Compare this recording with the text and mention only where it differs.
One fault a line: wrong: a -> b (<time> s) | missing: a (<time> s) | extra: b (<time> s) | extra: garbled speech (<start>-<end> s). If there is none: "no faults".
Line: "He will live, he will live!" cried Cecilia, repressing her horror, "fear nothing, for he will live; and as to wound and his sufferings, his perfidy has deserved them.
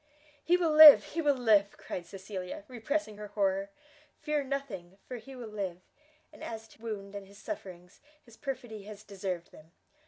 no faults